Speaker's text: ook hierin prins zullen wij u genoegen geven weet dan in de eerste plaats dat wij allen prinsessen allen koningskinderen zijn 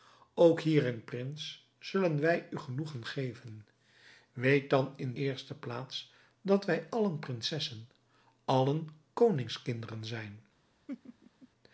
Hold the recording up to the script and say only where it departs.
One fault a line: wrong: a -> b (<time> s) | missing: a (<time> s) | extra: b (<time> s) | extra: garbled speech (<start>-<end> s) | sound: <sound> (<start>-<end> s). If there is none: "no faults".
missing: de (5.2 s)
sound: laugh (10.9-11.5 s)